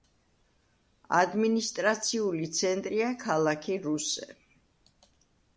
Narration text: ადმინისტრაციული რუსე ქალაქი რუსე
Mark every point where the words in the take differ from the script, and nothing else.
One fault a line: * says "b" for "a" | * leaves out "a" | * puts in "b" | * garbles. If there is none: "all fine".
* says "ცენტრია" for "რუსე"